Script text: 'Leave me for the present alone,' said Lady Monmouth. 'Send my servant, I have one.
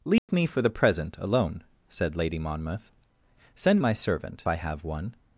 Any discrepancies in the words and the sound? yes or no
yes